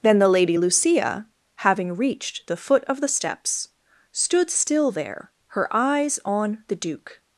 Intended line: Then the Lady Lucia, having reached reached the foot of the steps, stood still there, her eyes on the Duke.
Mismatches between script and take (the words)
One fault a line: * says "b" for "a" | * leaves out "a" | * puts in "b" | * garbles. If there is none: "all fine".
* leaves out "reached"